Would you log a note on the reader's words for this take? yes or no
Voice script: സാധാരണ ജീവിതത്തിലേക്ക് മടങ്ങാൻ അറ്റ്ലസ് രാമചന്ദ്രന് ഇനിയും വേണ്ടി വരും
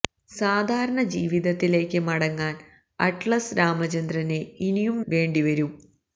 no